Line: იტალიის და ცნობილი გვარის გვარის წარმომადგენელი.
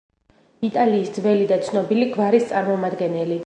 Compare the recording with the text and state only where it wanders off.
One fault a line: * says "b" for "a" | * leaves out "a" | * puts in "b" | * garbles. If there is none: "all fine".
* puts in "ძველი"
* leaves out "გვარის"